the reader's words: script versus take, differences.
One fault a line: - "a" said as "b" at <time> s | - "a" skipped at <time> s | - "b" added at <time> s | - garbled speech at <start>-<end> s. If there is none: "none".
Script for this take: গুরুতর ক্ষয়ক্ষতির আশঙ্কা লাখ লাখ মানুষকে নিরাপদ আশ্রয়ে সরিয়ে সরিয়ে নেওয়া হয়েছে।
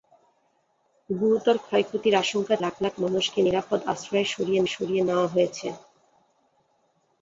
none